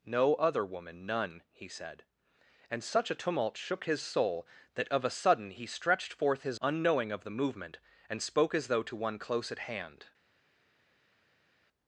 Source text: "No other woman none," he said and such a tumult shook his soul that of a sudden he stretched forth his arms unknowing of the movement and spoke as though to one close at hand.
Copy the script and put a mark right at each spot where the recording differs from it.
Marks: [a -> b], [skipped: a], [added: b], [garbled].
"No other woman none," he said and such a tumult shook his soul that of a sudden he stretched forth his [skipped: arms] unknowing of the movement and spoke as though to one close at hand.